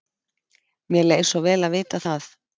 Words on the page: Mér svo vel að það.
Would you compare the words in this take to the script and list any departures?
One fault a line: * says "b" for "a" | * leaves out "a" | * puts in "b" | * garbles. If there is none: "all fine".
* puts in "leið"
* puts in "vita"